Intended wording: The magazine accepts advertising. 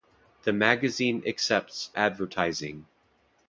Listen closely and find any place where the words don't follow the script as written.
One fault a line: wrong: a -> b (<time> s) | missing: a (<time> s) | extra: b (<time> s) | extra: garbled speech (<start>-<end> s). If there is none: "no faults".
no faults